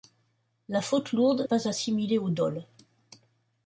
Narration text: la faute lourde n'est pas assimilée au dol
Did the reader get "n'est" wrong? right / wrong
wrong